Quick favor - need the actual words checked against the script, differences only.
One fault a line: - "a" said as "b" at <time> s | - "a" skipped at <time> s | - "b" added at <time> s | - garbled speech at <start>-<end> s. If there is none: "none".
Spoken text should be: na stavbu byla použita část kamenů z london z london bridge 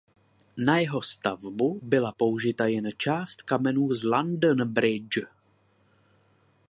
- "jeho" added at 0.8 s
- "jen" added at 2.7 s
- "z london" skipped at 4.7 s